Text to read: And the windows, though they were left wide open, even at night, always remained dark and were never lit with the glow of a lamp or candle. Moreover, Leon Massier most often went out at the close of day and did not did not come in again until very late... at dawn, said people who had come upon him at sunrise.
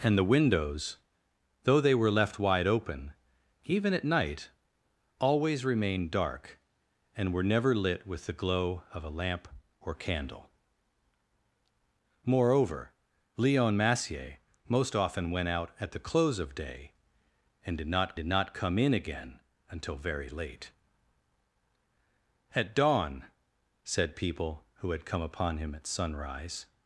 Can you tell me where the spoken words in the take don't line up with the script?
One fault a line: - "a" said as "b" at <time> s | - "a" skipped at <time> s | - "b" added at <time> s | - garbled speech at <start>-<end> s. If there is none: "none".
none